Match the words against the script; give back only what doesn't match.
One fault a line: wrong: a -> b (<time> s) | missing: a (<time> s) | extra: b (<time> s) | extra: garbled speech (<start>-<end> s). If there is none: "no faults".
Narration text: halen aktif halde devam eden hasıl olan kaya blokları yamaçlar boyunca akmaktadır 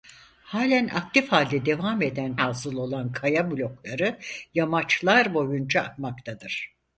no faults